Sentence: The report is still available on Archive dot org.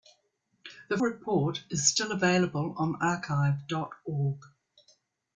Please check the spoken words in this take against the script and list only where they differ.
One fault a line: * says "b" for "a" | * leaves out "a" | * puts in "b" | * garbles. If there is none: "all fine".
all fine